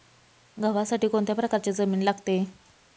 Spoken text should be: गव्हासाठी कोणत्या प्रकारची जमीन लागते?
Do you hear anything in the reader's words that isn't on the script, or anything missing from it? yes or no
no